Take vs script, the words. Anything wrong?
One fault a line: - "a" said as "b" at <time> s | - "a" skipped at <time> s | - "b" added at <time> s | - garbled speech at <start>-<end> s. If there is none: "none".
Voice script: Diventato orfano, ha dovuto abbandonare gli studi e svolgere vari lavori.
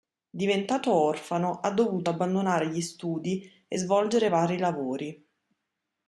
none